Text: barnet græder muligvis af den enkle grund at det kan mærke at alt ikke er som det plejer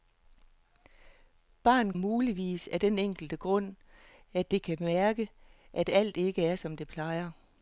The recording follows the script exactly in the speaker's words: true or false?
false